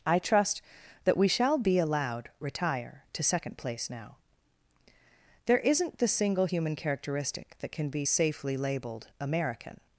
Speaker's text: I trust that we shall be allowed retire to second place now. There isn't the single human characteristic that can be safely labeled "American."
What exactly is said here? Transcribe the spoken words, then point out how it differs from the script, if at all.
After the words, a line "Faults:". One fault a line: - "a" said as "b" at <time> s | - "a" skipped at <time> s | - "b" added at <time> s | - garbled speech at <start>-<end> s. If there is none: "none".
I trust that we shall be allowed retire to second place now. There isn't the single human characteristic that can be safely labeled "American."
Faults:
none